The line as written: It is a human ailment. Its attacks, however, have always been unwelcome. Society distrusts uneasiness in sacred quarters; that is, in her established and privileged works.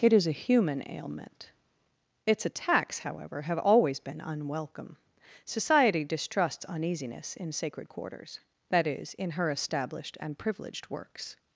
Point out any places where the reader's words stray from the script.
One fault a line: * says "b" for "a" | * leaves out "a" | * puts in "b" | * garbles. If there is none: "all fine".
all fine